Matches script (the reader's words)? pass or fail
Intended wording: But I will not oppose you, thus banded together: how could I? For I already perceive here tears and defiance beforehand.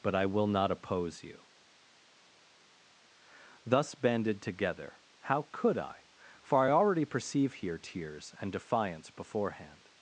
pass